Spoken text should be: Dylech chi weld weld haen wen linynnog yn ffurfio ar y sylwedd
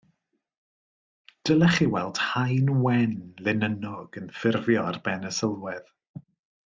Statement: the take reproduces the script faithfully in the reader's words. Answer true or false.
false